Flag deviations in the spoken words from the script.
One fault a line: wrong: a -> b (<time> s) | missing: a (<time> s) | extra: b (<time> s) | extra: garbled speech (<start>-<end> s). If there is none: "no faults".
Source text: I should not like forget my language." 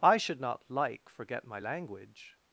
no faults